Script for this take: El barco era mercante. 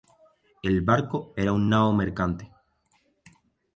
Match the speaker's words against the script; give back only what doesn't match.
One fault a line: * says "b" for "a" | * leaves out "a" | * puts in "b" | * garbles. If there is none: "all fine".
* puts in "una nao"